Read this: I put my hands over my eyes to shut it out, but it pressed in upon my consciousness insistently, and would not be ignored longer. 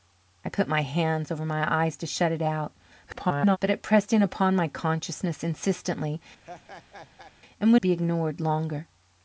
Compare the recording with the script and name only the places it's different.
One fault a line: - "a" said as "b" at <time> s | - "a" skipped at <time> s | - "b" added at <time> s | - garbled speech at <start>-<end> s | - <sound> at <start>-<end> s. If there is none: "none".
- garbled speech at 3.1-3.6 s
- laugh at 6.4-7.3 s
- "not" skipped at 7.8 s